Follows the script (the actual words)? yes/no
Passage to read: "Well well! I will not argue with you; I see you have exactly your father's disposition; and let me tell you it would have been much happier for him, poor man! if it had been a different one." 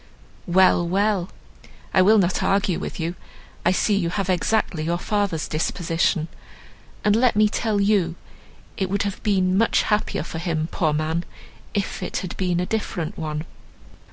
yes